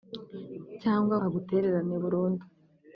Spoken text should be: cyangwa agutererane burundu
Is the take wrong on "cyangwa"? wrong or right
right